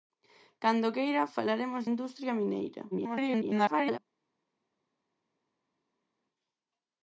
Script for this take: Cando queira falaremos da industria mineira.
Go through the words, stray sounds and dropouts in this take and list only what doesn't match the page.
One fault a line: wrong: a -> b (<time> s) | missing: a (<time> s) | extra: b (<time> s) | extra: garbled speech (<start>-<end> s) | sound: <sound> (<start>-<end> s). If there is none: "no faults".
missing: da (1.8 s)
extra: garbled speech (2.9-4.0 s)